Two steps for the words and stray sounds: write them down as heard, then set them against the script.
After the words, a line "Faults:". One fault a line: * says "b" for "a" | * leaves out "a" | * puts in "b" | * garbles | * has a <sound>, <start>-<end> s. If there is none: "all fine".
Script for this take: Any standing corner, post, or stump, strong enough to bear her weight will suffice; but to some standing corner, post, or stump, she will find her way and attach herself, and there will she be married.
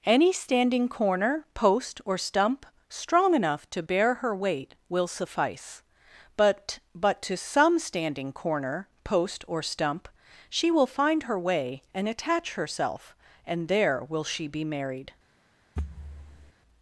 Any standing corner, post, or stump, strong enough to bear her weight will suffice; but but to some standing corner, post, or stump, she will find her way and attach herself, and there will she be married.
Faults:
* puts in "but"
* has a thud, 15.8-16.5 s